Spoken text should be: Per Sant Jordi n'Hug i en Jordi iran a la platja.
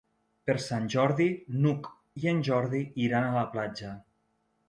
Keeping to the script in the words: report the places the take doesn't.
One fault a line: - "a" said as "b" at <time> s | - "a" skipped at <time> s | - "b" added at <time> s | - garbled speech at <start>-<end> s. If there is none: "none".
none